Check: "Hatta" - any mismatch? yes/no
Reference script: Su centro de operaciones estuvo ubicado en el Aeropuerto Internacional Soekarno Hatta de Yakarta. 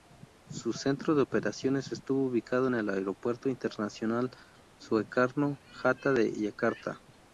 no